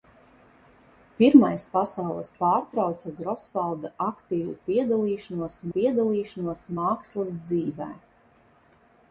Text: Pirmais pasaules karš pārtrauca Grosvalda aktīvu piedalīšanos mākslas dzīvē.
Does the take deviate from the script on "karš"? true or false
true